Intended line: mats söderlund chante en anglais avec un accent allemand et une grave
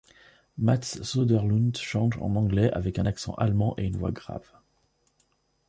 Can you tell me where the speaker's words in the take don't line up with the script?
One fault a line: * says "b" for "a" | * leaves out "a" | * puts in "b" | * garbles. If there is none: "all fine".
* puts in "voix"